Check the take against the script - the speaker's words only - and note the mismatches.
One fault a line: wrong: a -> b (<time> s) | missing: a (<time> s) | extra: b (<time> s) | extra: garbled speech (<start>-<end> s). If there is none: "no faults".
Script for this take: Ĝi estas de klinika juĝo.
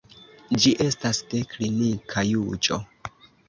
no faults